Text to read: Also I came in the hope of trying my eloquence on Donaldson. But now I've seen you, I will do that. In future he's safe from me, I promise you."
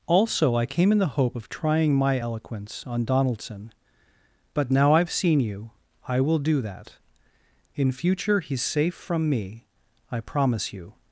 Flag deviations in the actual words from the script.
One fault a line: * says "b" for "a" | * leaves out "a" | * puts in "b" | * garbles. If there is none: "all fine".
all fine